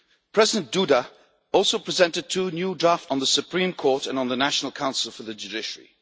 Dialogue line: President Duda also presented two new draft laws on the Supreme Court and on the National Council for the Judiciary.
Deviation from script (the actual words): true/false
true